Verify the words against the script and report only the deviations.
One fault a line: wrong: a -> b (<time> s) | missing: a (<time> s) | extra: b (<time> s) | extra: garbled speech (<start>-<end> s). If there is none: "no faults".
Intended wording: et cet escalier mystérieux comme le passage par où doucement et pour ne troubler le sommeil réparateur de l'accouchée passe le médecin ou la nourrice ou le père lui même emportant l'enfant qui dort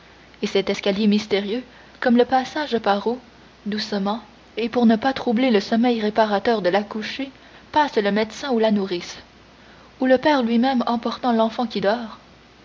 extra: pas (5.0 s)